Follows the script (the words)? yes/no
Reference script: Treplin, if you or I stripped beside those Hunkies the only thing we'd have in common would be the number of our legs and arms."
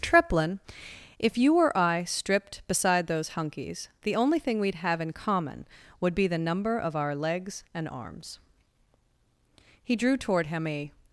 no